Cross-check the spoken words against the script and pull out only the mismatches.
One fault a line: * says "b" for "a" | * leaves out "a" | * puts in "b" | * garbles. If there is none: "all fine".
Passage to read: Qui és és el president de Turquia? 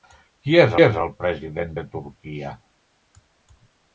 all fine